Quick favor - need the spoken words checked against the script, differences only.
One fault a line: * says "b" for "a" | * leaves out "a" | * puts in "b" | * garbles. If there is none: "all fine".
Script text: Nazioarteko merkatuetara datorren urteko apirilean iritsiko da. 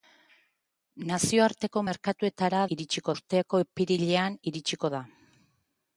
* says "iritsiko" for "datorren"